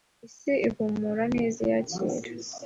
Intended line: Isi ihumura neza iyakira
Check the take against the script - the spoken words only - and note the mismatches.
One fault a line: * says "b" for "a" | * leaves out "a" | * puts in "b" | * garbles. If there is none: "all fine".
all fine